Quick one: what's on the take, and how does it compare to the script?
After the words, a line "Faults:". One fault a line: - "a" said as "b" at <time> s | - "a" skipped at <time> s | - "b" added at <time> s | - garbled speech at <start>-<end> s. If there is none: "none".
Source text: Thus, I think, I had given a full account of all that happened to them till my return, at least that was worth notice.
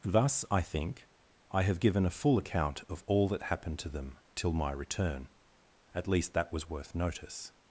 Thus, I think, I have given a full account of all that happened to them till my return, at least that was worth notice.
Faults:
- "had" said as "have" at 1.6 s